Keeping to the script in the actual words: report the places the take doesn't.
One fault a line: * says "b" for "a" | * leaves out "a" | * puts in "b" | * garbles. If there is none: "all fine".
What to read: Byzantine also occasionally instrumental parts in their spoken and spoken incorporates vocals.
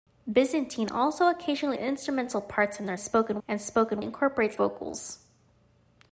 all fine